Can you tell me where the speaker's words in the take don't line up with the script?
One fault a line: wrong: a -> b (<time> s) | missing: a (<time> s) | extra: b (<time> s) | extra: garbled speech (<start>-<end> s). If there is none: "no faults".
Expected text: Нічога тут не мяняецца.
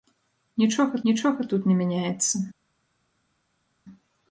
extra: нічога (1.1 s)